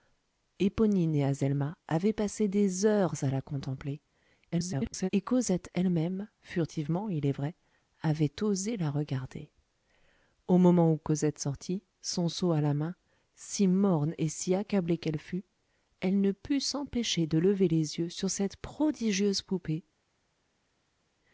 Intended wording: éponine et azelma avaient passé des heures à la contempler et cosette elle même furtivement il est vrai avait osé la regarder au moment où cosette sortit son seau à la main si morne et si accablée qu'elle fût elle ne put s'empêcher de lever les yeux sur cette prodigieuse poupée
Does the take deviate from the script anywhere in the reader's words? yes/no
yes